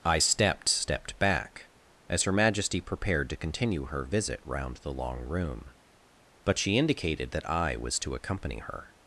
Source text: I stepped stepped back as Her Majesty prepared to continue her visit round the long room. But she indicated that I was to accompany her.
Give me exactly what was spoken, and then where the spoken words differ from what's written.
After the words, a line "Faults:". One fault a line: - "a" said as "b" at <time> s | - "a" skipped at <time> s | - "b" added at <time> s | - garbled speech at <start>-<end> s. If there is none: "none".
I stepped stepped back as Her Majesty prepared to continue her visit round the long room. But she indicated that I was to accompany her.
Faults:
none